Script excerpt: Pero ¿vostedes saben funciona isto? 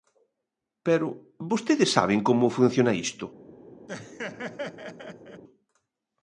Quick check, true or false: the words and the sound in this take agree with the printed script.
false